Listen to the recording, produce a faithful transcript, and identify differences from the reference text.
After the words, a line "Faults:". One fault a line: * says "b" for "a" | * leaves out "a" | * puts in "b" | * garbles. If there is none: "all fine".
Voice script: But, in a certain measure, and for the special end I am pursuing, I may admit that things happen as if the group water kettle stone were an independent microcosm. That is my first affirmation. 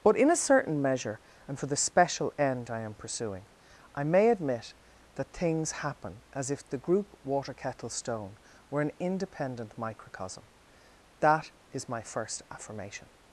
But, in a certain measure, and for the special end I am pursuing, I may admit that things happen as if the group water kettle stone were an independent microcosm. That is my first affirmation.
Faults:
all fine